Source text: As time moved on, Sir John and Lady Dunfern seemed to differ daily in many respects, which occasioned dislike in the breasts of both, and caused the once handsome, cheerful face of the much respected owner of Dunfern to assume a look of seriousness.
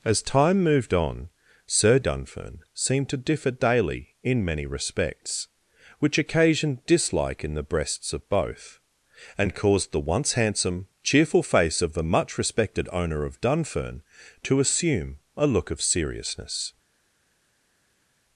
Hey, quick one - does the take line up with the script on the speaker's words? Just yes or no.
no